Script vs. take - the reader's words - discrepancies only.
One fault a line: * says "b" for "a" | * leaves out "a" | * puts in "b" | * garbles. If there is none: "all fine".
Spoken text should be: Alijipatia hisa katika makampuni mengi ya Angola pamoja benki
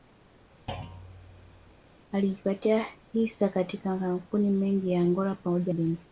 all fine